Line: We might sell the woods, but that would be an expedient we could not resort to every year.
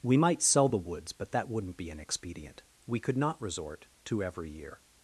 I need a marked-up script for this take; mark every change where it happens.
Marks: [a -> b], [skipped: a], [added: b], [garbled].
We might sell the woods, but that [would -> wouldn't] be an expedient we could not resort to every year.